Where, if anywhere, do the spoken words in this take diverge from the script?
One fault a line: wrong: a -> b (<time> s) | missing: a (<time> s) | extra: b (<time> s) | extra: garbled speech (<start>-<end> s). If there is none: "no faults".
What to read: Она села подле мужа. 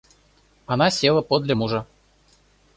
no faults